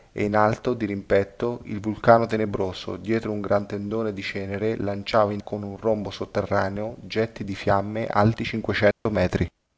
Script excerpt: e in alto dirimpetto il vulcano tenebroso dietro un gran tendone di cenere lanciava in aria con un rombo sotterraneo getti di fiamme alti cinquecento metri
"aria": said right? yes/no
no